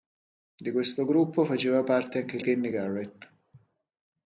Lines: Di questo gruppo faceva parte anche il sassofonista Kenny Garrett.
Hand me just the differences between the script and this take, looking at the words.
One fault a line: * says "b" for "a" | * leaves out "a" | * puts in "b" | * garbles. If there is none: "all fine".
* leaves out "sassofonista"